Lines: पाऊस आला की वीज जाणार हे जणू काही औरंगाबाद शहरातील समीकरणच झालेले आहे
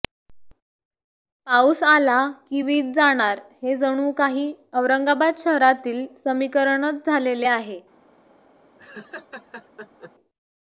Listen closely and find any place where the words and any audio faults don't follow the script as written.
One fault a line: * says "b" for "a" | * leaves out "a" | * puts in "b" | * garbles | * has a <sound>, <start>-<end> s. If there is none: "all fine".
* has a laugh, 8.8-10.1 s